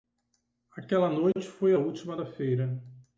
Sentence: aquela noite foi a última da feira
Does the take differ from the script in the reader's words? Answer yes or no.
no